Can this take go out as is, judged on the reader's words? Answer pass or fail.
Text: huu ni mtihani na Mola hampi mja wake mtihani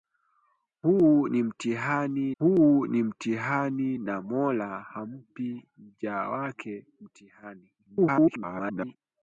fail